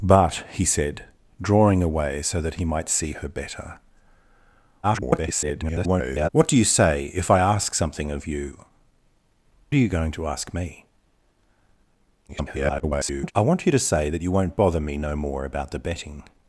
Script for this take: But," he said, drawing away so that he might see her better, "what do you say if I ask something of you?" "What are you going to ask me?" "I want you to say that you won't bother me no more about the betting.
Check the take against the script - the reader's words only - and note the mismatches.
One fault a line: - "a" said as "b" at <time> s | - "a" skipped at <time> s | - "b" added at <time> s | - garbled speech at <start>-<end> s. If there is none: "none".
- garbled speech at 4.8-6.3 s
- "What" skipped at 8.6 s
- garbled speech at 12.3-13.3 s